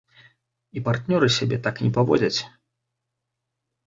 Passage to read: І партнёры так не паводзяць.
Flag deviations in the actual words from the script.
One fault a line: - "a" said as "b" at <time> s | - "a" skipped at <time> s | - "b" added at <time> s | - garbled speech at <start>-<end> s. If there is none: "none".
- "сябе" added at 1.4 s